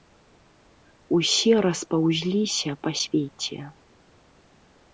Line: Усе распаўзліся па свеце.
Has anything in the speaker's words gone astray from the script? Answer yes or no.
no